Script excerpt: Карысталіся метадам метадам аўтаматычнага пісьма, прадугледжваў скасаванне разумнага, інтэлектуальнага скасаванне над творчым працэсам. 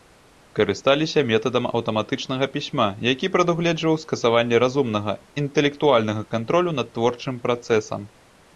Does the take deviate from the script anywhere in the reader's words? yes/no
yes